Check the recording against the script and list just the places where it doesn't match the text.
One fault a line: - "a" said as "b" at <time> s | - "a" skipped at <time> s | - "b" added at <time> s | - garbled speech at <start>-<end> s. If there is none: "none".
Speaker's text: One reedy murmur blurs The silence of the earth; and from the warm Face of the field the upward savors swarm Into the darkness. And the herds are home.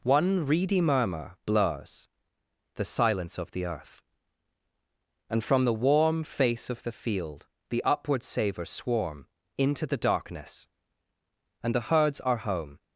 none